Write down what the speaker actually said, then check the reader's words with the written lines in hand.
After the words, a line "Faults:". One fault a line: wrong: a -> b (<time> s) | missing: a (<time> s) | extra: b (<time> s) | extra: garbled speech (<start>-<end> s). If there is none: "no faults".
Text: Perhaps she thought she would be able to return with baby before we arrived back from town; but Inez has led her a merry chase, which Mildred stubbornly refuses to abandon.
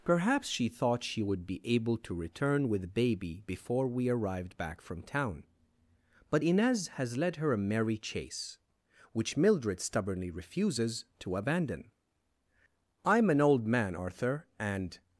Perhaps she thought she would be able to return with baby before we arrived back from town; but Inez has led her a merry chase, which Mildred stubbornly refuses to abandon. I'm an old man, Arthur, and
Faults:
extra: I'm an old man Arthur and (13.0 s)